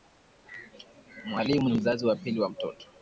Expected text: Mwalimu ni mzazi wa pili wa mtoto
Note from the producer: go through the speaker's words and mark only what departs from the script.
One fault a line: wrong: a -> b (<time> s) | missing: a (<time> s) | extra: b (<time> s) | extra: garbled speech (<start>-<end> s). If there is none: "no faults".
no faults